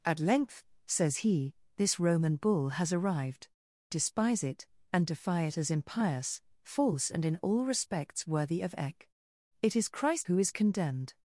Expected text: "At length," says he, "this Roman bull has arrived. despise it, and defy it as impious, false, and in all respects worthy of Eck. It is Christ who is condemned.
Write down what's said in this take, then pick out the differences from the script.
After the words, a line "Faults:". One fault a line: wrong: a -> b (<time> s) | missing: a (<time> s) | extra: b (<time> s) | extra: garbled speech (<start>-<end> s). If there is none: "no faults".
"At length," says he, "this Roman bull has arrived. despise it, and defy it as impious, false, and in all respects worthy of Eck. It is Christ who is condemned.
Faults:
no faults